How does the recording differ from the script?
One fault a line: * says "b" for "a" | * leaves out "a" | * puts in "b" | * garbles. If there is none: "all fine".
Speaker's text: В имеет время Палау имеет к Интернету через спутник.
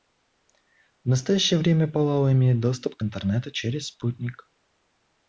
* says "настоящее" for "имеет"
* puts in "доступ"